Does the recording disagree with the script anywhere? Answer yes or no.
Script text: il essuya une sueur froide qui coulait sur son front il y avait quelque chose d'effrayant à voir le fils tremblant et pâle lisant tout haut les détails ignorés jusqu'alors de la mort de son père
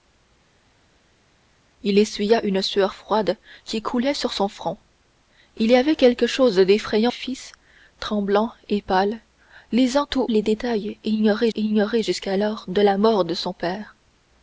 yes